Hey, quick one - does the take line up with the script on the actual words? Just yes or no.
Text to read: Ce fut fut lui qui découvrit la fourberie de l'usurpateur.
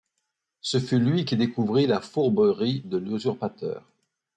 no